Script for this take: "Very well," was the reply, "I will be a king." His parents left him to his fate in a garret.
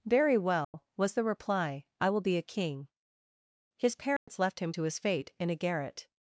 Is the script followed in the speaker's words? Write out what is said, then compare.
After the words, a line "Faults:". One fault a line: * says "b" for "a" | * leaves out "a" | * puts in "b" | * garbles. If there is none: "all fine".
"Very well," was the reply, "I will be a king." His parents left him to his fate in a garret.
Faults:
all fine